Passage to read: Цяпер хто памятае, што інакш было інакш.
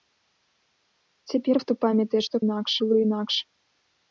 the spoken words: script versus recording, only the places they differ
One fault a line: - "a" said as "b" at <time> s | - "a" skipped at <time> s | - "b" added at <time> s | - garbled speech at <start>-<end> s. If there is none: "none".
none